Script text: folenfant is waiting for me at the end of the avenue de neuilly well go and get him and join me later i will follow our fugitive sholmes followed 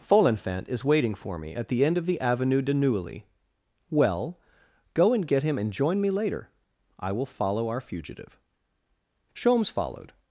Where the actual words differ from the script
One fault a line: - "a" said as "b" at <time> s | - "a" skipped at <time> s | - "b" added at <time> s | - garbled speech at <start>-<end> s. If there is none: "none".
none